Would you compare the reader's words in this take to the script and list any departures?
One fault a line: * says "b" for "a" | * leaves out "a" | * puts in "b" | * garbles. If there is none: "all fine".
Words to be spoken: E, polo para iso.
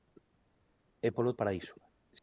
all fine